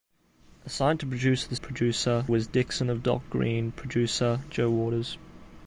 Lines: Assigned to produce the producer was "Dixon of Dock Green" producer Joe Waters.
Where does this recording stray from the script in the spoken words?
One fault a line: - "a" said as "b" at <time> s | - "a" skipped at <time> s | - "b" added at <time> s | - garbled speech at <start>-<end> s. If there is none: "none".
none